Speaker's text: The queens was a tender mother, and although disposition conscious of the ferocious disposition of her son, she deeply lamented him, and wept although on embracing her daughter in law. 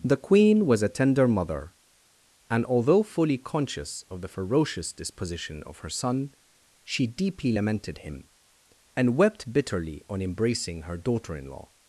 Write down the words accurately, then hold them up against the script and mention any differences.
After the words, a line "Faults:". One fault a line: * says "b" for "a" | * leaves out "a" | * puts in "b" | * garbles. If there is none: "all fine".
The queen was a tender mother, and although fully conscious of the ferocious disposition of her son, she deeply lamented him, and wept bitterly on embracing her daughter in law.
Faults:
* says "queen" for "queens"
* says "fully" for "disposition"
* says "bitterly" for "although"